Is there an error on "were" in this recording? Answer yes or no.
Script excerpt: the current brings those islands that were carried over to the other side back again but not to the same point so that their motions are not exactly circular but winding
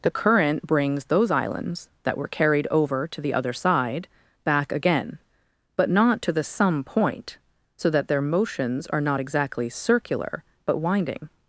no